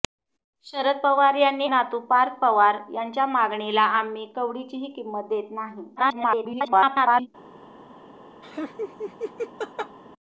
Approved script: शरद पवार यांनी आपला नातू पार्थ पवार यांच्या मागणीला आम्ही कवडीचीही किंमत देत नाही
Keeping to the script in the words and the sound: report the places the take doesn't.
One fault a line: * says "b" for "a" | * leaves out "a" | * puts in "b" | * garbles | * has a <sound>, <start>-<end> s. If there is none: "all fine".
* leaves out "आपला"
* garbles
* has a laugh, 8.4-10.0 s